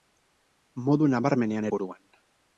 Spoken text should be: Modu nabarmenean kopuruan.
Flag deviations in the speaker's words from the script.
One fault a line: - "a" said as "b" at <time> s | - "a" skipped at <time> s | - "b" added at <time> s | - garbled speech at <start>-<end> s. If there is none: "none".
none